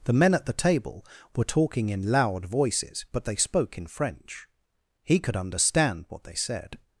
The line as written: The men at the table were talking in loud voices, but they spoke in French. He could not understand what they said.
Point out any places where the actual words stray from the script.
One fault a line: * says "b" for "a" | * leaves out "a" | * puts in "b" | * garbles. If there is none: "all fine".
* leaves out "not"